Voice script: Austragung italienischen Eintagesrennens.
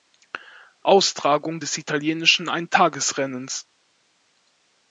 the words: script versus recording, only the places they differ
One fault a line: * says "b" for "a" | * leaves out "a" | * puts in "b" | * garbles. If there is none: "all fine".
* puts in "des"